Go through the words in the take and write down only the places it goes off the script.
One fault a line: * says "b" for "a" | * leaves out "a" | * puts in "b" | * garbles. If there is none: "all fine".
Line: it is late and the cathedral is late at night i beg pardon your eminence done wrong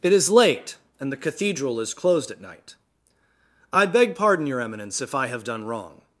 * says "closed" for "late"
* puts in "if i have"